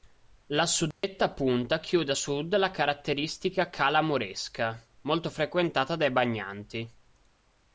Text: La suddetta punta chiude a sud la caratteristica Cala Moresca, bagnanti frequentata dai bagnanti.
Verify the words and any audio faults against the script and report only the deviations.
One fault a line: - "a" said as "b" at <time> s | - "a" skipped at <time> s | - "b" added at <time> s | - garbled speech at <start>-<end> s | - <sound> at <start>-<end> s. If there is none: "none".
- dropout at 0.9-1.0 s
- "bagnanti" said as "molto" at 5.0 s